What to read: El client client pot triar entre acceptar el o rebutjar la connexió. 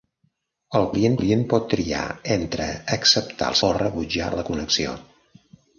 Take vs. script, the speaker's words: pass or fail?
pass